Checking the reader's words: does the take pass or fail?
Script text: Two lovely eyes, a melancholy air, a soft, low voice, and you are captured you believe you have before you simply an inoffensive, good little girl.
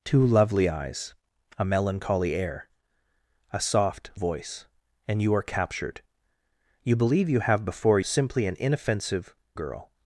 fail